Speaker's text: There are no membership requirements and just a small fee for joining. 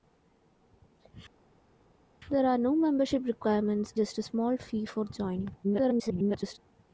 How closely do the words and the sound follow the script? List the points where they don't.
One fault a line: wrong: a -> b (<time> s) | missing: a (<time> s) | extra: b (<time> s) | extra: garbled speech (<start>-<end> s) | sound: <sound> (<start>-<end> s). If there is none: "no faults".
missing: and (3.9 s)
extra: garbled speech (5.6-6.6 s)